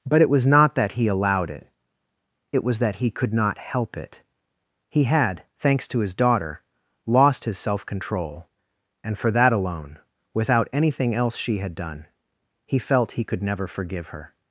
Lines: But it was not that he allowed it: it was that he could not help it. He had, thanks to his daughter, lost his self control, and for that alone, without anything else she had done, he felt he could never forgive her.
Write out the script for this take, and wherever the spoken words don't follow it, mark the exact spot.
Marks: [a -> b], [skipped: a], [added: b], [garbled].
But it was not that he allowed it: it was that he could not help it. He had, thanks to his daughter, lost his self control, and for that alone, without anything else she had done, he felt he could never forgive her.